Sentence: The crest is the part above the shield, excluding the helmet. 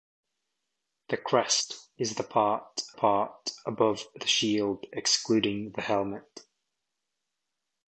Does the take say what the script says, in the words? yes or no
no